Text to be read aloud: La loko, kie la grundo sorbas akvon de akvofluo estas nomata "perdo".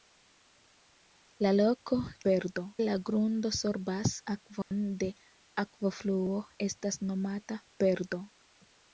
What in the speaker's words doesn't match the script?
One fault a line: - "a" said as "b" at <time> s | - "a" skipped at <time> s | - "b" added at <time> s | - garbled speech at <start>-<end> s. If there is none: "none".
- "kie" said as "perdo" at 2.3 s